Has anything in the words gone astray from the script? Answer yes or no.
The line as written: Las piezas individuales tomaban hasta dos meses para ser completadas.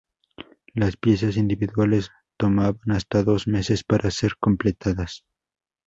no